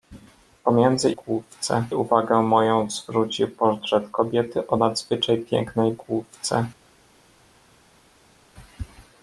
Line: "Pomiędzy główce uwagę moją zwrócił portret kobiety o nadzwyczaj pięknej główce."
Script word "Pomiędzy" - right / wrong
right